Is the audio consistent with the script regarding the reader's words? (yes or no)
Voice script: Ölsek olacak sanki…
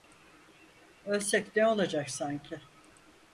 no